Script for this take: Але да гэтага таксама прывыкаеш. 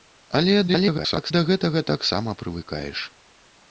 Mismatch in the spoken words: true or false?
true